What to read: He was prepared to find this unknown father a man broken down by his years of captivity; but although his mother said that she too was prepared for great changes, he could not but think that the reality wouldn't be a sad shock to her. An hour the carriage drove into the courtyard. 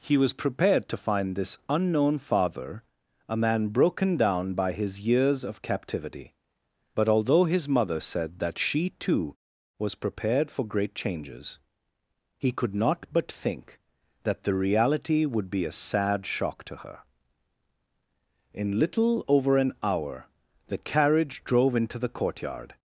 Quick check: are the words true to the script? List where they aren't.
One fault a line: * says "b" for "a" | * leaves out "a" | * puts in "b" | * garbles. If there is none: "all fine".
* says "would" for "wouldn't"
* puts in "In little over"